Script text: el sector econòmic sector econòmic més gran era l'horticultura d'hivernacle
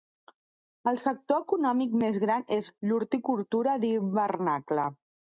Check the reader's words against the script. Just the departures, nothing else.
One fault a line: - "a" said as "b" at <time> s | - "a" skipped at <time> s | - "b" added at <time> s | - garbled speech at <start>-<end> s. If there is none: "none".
- "sector econòmic" skipped at 1.9 s
- "era" said as "és" at 2.6 s